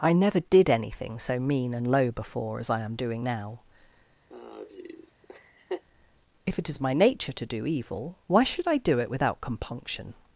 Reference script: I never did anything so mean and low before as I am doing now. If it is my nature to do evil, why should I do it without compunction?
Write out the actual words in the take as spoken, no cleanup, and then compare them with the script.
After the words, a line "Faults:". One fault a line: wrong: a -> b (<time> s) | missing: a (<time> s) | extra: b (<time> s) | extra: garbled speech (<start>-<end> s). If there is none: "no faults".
I never did anything so mean and low before as I am doing now. If it is my nature to do evil, why should I do it without compunction?
Faults:
no faults